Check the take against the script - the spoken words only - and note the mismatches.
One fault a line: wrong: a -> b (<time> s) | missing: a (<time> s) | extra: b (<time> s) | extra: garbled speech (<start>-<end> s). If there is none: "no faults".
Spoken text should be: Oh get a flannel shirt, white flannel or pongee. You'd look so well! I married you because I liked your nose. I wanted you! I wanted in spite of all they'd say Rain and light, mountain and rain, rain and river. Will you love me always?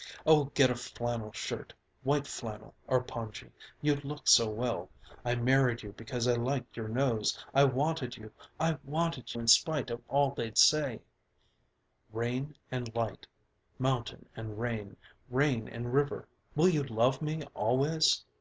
no faults